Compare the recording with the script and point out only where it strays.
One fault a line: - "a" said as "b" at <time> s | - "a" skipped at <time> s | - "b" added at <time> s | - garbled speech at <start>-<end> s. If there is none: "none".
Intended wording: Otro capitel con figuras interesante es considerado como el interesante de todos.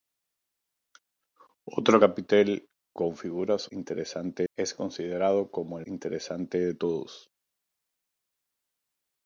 none